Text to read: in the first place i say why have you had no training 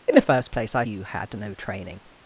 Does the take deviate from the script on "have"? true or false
true